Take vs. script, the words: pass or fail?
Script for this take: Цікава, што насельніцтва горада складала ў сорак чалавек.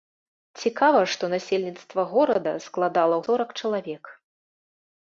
pass